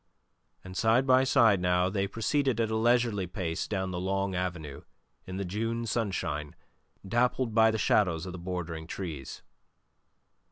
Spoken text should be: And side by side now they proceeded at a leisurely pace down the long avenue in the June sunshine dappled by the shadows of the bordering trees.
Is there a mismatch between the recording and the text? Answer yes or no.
no